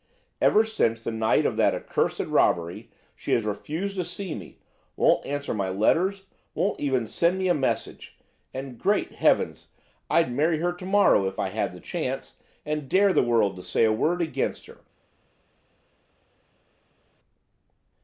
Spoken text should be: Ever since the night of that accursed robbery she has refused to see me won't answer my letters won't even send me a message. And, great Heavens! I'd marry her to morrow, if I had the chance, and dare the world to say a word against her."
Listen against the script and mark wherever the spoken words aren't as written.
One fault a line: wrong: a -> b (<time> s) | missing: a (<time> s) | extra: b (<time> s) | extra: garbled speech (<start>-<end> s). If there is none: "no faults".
no faults